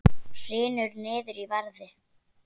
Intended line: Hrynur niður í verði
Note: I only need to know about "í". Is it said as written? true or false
true